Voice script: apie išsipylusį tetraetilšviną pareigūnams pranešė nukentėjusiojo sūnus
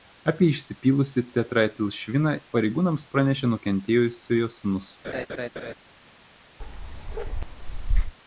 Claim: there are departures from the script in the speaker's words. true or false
false